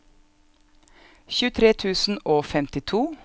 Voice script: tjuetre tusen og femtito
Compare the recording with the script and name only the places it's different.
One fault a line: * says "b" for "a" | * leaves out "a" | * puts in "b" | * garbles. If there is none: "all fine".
all fine